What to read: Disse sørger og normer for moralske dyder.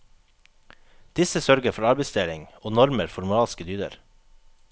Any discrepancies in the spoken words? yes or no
yes